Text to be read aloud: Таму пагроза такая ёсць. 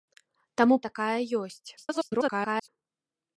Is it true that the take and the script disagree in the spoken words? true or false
true